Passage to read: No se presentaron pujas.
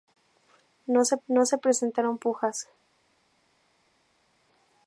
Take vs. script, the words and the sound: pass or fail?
fail